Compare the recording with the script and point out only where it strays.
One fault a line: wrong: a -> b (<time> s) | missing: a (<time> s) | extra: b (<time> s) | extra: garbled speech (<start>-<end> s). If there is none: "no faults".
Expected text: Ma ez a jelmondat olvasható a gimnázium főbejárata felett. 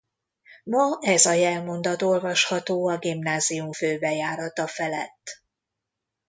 no faults